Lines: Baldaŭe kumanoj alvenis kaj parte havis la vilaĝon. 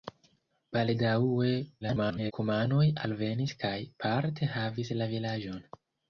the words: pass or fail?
fail